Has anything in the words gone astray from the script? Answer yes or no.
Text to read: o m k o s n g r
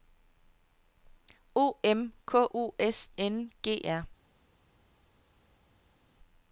no